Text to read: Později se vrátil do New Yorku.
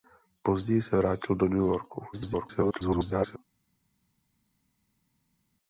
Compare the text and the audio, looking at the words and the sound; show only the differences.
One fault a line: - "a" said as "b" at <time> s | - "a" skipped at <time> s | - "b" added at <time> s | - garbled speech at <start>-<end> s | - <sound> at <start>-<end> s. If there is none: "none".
- garbled speech at 2.1-3.4 s